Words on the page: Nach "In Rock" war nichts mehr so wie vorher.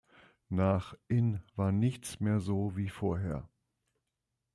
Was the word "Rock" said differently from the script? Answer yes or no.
yes